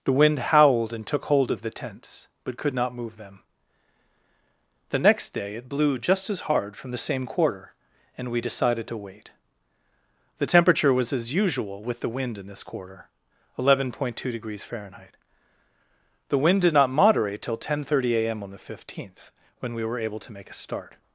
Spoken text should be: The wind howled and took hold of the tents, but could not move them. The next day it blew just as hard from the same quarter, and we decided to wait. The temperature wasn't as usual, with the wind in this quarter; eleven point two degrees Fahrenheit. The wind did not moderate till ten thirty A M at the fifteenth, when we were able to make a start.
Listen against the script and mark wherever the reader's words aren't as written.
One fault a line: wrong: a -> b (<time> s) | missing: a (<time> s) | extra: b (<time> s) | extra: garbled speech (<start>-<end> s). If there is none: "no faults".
wrong: wasn't -> was (10.9 s)
wrong: at -> on (18.4 s)